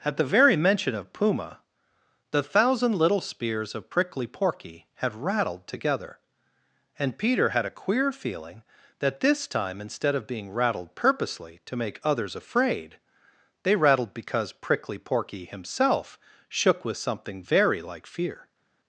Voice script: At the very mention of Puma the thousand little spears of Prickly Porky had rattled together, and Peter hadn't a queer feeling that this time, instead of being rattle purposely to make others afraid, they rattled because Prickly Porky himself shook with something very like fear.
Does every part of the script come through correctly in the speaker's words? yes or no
no